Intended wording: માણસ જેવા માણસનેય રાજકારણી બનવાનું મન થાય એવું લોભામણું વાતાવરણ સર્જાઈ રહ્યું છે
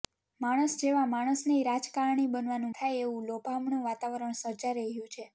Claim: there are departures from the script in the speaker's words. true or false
true